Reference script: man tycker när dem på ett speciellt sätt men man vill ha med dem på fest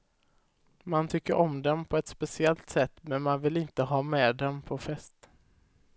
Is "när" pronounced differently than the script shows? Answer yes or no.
yes